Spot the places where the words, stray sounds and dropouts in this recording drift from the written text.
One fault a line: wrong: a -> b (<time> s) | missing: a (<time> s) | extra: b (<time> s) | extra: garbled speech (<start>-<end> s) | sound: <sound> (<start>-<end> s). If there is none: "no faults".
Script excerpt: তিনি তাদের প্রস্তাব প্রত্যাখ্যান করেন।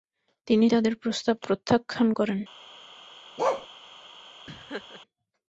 sound: bark (3.4-3.7 s)
sound: laugh (4.5-5.0 s)